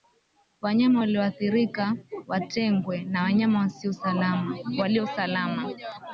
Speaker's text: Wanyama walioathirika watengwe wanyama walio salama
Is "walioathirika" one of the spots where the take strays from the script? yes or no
no